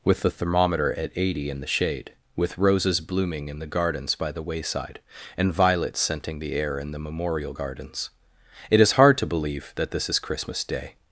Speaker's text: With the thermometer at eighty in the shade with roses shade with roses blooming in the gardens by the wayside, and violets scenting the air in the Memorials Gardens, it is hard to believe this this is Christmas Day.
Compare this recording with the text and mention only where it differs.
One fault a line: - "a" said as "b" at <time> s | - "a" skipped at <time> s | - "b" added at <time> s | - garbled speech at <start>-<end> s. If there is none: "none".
- "shade with roses" skipped at 3.0 s
- "Memorials" said as "Memorial" at 7.0 s
- "this" said as "that" at 9.7 s